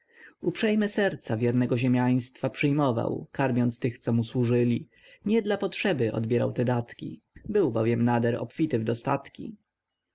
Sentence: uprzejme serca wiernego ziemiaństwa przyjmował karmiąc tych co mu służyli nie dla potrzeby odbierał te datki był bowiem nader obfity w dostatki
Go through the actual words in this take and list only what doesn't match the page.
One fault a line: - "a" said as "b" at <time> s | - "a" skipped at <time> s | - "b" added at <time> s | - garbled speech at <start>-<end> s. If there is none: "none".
none